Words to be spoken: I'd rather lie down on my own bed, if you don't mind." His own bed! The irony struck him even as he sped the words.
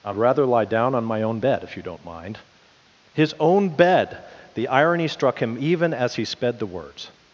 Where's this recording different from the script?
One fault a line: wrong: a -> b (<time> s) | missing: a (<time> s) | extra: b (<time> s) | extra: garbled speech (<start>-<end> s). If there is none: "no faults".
no faults